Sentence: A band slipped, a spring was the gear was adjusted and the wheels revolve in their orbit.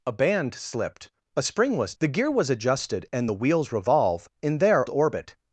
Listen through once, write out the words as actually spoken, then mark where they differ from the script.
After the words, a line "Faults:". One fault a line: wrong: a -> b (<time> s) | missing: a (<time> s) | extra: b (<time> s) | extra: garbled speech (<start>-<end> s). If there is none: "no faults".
A band slipped, a spring was the gear was adjusted and the wheels revolve in their orbit.
Faults:
no faults